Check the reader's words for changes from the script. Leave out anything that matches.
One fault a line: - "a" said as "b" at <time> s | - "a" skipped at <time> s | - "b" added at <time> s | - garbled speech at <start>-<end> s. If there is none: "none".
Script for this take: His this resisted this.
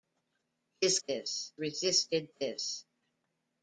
none